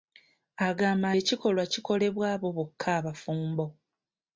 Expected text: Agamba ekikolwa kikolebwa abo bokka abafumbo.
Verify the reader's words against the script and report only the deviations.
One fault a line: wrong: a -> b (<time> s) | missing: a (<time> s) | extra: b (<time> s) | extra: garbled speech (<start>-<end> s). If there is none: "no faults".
no faults